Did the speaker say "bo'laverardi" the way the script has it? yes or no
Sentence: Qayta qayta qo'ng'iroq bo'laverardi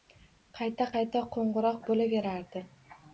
yes